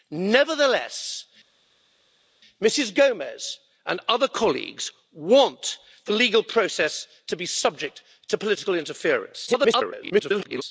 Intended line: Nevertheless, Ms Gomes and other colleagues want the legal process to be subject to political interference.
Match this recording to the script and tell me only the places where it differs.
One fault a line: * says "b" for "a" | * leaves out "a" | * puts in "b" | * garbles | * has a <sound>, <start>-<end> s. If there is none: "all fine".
* garbles